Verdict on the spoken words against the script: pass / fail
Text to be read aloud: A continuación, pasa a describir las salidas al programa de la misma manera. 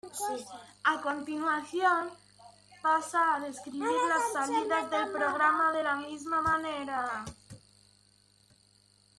fail